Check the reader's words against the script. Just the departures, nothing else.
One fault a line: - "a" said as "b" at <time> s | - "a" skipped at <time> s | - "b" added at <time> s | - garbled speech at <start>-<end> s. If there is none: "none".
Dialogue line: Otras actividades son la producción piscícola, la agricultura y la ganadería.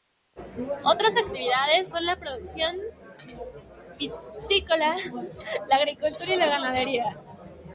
none